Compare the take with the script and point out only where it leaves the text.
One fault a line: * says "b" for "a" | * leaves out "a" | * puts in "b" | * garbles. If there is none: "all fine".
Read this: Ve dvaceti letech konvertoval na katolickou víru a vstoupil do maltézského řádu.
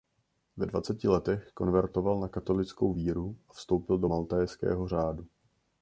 all fine